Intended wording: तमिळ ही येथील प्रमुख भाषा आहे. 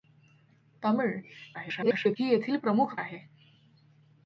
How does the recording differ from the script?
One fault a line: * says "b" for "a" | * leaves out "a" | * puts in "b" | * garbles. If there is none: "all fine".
* garbles
* leaves out "भाषा"